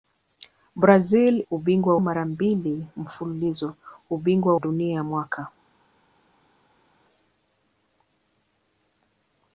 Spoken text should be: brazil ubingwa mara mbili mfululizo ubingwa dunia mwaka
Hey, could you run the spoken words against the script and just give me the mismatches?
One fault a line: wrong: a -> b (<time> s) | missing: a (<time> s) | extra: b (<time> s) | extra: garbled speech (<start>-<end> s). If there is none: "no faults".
no faults